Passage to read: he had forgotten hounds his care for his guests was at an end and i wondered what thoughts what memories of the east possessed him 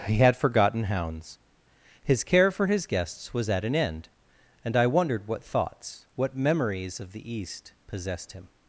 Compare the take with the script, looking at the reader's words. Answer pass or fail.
pass